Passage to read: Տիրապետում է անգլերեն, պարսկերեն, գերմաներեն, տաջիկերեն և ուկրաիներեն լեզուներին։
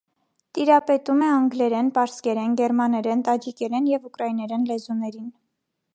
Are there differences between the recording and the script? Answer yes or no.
no